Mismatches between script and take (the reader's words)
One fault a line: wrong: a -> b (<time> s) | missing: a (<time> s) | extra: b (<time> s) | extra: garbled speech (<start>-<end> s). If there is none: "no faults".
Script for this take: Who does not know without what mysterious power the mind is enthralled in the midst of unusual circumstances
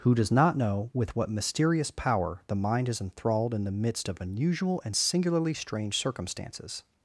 wrong: without -> with (0.9 s)
extra: and singularly strange (4.8 s)